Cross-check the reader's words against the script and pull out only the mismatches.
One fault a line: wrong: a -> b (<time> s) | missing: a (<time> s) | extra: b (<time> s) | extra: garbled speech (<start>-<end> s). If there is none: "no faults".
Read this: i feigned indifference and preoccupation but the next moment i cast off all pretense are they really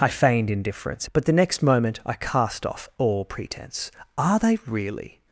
missing: and preoccupation (1.1 s)